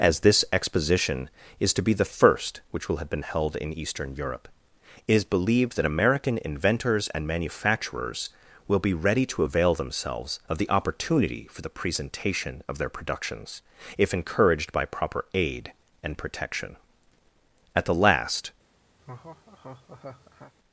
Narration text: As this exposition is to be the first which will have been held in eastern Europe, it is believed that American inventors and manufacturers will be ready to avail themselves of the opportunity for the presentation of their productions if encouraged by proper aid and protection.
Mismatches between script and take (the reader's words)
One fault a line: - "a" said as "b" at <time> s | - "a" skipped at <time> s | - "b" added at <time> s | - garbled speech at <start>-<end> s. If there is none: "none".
- "At the last" added at 17.7 s